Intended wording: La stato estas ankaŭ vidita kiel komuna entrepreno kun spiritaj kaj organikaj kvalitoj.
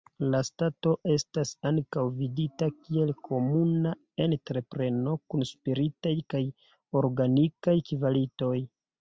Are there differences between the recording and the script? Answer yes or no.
no